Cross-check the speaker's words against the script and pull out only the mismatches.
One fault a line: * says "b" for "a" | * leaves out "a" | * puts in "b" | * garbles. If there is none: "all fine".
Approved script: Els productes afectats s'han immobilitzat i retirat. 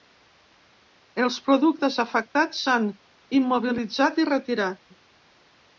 all fine